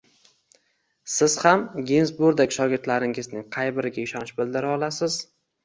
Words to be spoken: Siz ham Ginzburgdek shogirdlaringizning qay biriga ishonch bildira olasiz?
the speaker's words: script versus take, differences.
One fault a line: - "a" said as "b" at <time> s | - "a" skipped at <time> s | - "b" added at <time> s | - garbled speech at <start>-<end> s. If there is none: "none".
none